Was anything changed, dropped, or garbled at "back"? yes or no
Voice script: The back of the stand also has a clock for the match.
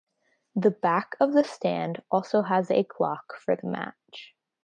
no